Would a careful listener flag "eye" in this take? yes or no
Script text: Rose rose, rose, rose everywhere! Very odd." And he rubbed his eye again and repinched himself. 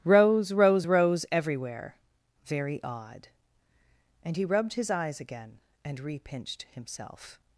yes